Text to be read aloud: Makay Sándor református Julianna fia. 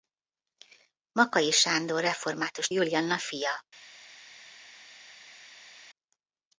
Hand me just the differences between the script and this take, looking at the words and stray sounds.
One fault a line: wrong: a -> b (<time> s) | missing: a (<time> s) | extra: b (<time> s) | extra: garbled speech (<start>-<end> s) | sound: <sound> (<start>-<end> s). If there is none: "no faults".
no faults